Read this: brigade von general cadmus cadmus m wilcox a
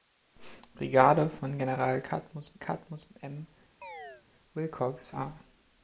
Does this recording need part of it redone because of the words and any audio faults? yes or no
yes